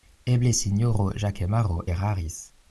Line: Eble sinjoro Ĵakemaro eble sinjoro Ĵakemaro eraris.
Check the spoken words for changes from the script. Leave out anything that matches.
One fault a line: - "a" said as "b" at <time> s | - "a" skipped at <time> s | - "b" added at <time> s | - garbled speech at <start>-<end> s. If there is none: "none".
- "eble sinjoro Ĵakemaro" skipped at 1.8 s